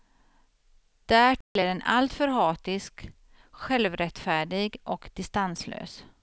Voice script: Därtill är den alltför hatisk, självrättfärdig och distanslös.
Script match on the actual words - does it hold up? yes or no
yes